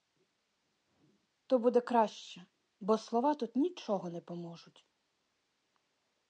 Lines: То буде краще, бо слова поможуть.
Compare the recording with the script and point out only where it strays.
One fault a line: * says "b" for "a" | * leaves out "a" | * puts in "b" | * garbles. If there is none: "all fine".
* puts in "тут нічого не"